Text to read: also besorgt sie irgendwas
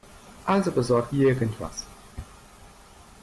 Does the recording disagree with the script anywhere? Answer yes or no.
yes